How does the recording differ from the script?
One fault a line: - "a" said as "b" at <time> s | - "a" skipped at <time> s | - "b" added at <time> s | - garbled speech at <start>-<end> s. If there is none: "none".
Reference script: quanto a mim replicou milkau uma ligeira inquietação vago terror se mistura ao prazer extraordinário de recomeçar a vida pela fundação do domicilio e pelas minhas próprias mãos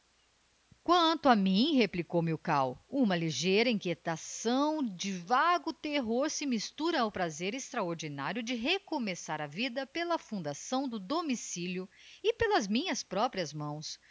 - "de" added at 4.8 s